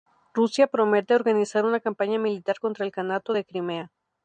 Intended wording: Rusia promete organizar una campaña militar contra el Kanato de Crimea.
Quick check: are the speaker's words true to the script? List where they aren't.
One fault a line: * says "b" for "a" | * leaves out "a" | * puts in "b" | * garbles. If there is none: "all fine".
all fine